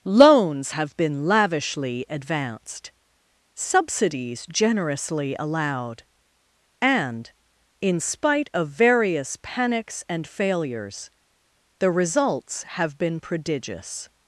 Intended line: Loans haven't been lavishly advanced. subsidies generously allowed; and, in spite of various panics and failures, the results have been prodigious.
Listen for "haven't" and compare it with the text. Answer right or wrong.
wrong